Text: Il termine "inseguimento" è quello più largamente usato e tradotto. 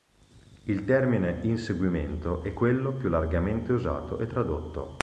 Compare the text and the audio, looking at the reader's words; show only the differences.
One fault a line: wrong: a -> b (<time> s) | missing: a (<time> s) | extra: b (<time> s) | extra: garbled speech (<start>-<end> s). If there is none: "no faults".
no faults